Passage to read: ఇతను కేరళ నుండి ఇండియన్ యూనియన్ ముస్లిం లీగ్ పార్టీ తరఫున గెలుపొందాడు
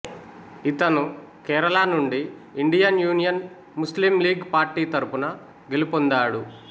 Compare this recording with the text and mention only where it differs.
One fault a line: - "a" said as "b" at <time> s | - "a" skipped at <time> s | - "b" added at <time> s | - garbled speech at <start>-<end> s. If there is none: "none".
none